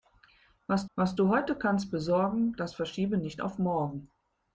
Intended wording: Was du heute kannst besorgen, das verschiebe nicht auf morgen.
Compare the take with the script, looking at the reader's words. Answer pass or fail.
fail